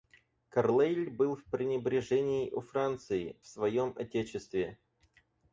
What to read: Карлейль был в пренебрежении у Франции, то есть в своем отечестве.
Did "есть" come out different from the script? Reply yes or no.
yes